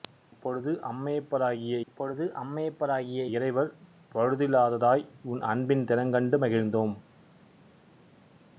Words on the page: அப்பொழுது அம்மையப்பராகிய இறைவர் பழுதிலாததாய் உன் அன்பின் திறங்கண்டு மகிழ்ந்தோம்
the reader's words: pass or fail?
fail